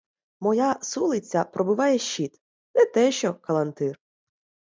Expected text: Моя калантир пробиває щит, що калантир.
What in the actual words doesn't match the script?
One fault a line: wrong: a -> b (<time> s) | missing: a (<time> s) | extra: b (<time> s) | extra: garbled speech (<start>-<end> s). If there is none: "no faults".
wrong: калантир -> сулиця (0.8 s)
extra: не те (2.8 s)